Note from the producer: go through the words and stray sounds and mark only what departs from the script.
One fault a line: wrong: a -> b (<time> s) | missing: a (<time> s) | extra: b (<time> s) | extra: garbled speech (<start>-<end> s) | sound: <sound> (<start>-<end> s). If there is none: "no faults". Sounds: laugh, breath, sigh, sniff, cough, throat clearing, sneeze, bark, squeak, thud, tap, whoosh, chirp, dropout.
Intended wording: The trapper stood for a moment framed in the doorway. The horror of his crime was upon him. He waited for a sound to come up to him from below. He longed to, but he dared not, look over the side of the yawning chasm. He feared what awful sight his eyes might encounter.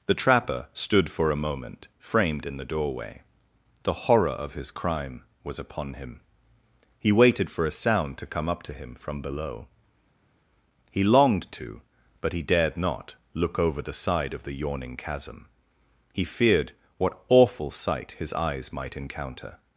no faults